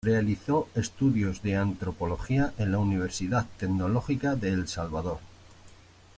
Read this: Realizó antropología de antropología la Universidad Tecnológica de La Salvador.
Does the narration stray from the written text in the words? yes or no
yes